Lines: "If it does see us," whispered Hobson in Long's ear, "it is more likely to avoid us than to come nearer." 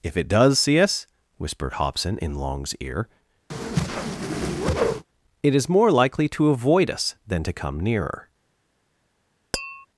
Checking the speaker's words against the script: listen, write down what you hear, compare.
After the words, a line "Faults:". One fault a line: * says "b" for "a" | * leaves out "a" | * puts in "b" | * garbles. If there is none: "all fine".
"If it does see us," whispered Hobson in Long's ear, "it is more likely to avoid us than to come nearer."
Faults:
all fine